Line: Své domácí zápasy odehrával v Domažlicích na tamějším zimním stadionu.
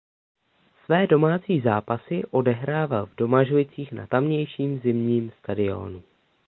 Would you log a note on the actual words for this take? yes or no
no